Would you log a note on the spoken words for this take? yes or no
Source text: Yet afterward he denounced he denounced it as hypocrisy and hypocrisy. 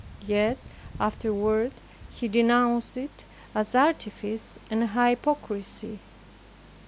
yes